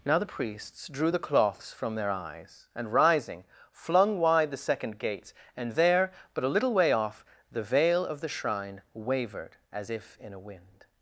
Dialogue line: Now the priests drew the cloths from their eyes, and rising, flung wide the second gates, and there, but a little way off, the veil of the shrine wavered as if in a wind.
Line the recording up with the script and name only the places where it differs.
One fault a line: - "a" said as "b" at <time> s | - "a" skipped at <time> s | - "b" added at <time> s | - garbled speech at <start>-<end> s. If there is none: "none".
none